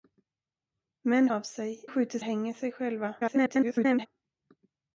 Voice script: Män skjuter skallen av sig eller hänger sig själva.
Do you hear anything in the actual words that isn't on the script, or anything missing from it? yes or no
yes